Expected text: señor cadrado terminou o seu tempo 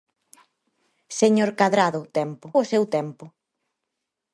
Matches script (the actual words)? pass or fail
fail